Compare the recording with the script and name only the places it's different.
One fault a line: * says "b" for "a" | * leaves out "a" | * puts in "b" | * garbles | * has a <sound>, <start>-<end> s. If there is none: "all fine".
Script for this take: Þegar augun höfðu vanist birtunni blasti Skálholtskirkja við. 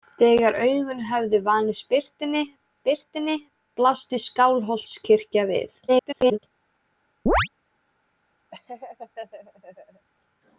* puts in "birtunni"
* garbles
* has a chirp, 7.3-7.5 s
* has a laugh, 8.5-10.1 s